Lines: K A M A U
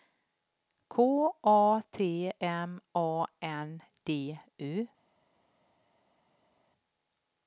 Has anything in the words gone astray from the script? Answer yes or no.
yes